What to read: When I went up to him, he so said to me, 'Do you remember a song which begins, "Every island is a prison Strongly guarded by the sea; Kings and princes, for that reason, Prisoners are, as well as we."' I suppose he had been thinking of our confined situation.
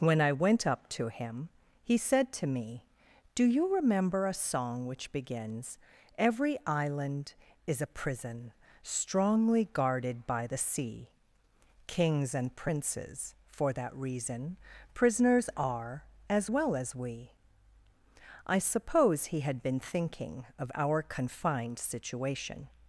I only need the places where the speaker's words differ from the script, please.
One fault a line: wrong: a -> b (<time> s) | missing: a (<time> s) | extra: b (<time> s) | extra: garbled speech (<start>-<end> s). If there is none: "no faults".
missing: so (1.9 s)